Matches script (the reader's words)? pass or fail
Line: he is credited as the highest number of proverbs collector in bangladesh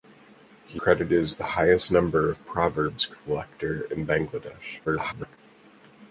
fail